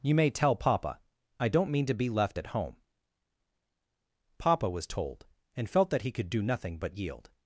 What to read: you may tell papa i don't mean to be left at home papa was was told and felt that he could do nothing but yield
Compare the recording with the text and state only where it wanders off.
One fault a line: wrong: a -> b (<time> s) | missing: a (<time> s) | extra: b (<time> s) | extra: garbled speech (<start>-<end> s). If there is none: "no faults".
missing: was (4.9 s)